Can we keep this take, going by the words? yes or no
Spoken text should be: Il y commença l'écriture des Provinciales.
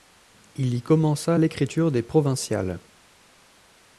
yes